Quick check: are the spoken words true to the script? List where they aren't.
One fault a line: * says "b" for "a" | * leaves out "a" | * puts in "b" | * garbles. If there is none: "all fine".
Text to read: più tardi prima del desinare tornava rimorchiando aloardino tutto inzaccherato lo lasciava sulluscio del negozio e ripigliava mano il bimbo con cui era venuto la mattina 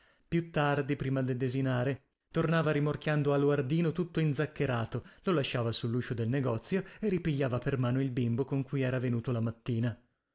* puts in "per"